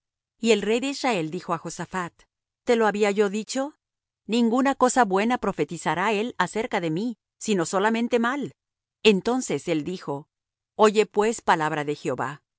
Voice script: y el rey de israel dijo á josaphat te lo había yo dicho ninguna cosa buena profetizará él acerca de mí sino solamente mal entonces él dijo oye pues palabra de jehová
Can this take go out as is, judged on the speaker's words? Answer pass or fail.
pass